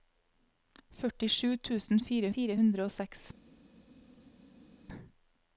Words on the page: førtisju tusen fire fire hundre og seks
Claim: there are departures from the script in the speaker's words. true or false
false